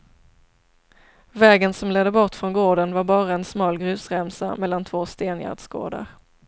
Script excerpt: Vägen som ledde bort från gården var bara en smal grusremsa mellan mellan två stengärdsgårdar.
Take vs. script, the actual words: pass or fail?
fail